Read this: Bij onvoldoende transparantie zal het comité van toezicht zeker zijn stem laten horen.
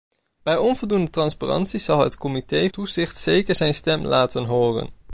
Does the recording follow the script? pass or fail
fail